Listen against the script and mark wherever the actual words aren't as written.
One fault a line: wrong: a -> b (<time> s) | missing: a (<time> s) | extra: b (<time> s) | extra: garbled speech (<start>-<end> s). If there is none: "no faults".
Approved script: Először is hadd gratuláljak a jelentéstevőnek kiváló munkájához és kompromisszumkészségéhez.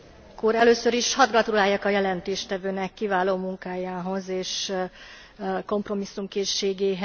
no faults